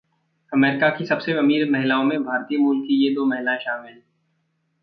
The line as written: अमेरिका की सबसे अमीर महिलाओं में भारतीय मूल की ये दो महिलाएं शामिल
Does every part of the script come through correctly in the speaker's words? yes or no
yes